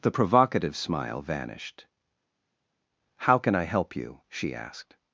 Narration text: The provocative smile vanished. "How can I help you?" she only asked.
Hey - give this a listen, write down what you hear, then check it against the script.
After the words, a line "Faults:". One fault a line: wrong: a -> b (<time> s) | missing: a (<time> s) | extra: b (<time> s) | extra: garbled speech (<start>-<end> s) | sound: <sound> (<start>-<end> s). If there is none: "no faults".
The provocative smile vanished. "How can I help you?" she asked.
Faults:
missing: only (4.5 s)